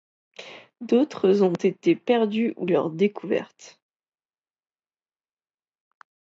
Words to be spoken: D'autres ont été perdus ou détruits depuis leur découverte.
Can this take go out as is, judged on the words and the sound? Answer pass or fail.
fail